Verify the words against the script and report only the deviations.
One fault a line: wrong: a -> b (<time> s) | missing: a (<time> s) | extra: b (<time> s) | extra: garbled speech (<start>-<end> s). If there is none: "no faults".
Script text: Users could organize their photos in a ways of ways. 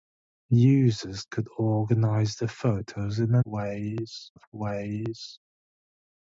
no faults